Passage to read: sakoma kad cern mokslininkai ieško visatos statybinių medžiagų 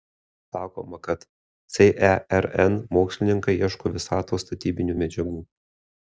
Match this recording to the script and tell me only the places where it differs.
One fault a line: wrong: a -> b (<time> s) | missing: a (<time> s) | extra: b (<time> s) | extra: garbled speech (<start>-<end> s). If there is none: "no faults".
no faults